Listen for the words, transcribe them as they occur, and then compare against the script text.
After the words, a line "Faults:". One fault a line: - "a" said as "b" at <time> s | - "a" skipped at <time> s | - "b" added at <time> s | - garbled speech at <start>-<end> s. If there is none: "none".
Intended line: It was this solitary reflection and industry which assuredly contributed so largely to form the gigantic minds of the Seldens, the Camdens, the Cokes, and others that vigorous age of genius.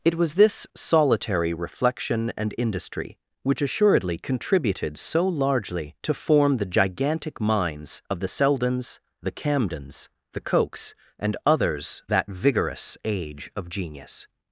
It was this solitary reflection and industry which assuredly contributed so largely to form the gigantic minds of the Seldens, the Camdens, the Cokes, and others that vigorous age of genius.
Faults:
none